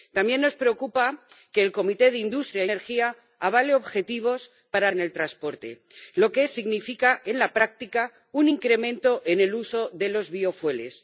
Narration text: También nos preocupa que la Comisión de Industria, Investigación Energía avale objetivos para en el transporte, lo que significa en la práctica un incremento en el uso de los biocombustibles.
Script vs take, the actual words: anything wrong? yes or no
no